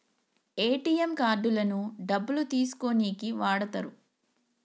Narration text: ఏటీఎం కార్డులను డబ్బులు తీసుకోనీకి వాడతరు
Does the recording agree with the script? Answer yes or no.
yes